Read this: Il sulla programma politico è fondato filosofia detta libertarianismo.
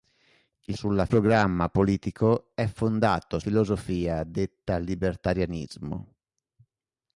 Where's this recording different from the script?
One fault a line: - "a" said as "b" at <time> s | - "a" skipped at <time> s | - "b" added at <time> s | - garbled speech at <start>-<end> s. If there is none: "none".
none